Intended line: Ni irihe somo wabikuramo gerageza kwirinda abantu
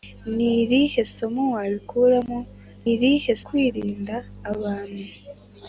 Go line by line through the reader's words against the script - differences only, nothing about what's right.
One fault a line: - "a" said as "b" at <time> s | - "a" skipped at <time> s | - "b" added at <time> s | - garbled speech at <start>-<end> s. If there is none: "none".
- "gerageza" said as "irihe" at 2.9 s